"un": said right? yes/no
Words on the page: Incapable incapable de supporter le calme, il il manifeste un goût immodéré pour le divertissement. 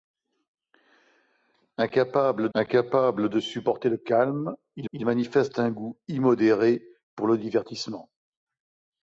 yes